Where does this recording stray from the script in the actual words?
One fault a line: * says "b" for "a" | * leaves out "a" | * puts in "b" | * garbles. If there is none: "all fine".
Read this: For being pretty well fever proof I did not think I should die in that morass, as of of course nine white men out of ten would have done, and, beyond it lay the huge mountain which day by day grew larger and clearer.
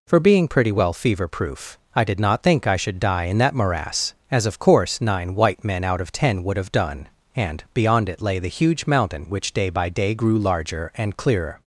* leaves out "of"